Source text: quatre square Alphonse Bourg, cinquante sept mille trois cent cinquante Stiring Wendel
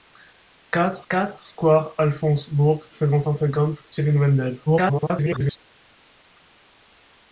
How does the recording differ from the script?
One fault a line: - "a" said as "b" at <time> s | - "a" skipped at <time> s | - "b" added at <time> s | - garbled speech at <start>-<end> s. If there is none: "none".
- "quatre" added at 1.1 s
- "sept mille trois" skipped at 3.2 s
- garbled speech at 4.7-5.6 s